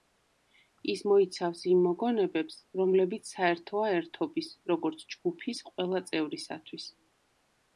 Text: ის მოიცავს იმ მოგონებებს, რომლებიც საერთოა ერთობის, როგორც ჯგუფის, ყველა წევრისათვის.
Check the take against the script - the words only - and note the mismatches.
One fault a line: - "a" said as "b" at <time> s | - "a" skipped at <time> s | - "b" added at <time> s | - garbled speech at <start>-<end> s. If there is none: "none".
none